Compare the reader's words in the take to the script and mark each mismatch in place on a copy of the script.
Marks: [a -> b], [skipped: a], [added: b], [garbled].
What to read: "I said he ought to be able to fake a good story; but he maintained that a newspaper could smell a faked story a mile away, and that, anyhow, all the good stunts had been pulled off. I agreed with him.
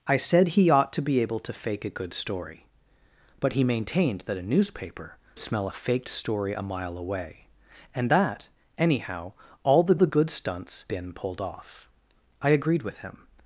"I said he ought to be able to fake a good story; but he maintained that a newspaper [skipped: could] smell a faked story a mile away, and that, anyhow, all the [added: the] good stunts [skipped: had] been pulled off. I agreed with him.